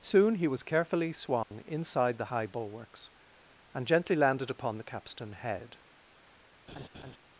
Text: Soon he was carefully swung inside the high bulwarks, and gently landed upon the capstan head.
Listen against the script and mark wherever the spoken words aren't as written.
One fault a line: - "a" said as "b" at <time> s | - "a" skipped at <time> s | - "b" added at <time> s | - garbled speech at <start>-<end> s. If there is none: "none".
none